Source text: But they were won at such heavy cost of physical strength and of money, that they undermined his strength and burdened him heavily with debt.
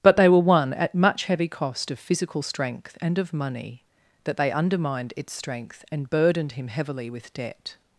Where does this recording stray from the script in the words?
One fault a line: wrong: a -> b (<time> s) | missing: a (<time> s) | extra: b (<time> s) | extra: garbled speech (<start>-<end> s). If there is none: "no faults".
wrong: such -> much (0.9 s)
wrong: his -> its (5.2 s)